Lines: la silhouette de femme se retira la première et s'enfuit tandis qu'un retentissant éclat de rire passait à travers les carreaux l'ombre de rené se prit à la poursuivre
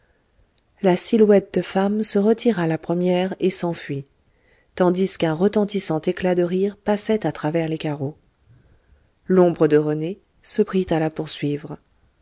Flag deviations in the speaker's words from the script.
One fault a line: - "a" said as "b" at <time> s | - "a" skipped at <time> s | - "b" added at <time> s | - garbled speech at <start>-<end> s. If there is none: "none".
none